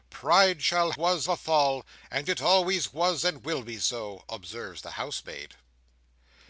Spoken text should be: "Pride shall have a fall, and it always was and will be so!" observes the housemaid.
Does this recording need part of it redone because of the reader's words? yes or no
yes